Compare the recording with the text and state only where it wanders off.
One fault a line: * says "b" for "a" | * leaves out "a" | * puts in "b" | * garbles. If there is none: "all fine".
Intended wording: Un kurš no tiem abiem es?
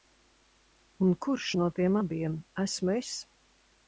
* puts in "esmu"